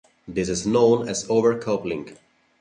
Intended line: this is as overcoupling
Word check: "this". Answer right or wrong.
right